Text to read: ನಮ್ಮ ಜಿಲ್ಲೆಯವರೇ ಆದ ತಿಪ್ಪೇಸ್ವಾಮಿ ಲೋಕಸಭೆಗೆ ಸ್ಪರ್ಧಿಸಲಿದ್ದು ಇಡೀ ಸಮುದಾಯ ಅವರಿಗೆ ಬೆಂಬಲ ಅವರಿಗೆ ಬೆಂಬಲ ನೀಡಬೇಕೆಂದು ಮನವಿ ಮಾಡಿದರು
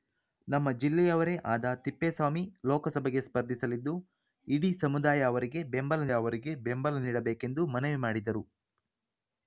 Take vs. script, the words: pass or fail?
pass